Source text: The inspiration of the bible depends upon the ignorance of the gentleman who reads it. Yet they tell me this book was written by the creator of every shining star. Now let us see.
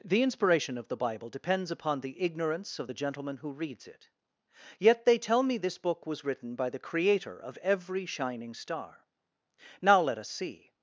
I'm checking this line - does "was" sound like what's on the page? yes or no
yes